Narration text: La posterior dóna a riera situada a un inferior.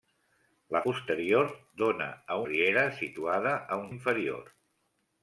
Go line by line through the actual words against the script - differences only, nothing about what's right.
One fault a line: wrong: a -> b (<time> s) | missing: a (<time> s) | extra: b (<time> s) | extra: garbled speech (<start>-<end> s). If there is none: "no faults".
no faults